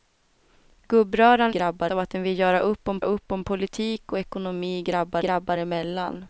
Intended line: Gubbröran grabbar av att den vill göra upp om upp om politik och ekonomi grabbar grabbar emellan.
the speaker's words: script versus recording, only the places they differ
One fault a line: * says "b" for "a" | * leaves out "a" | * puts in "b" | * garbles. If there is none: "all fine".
all fine